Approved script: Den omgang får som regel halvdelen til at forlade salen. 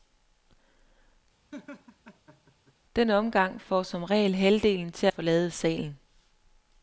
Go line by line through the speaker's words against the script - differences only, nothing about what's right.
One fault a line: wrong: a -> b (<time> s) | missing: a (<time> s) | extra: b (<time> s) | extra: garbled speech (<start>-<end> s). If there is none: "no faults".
missing: at (5.1 s)